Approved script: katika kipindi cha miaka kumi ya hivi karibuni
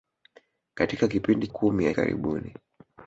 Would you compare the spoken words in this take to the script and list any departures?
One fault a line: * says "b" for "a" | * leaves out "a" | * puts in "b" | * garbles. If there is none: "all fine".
* leaves out "cha miaka"
* leaves out "hivi"